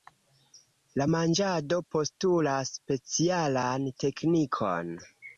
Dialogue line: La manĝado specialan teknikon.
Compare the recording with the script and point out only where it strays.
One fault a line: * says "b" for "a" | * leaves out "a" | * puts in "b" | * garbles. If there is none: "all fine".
* puts in "postulas"